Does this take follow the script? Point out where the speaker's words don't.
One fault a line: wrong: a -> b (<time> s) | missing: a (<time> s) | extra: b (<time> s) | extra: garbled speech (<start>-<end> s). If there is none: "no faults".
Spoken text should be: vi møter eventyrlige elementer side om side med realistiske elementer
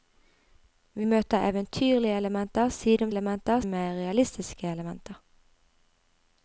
wrong: side -> elementer (3.1 s)